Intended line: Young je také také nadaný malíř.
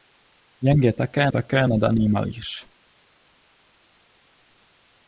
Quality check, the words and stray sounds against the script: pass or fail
pass